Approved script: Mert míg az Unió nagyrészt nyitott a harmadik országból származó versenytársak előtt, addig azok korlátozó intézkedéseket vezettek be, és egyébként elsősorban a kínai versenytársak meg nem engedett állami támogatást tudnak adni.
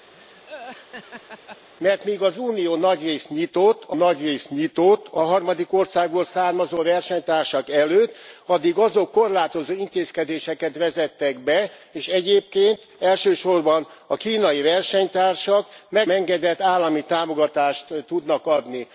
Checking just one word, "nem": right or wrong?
wrong